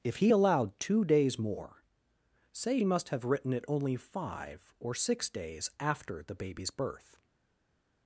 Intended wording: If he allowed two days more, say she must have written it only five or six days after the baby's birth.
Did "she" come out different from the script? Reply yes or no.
yes